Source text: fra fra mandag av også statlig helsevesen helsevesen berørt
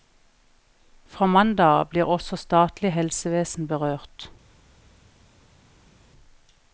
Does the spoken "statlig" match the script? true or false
true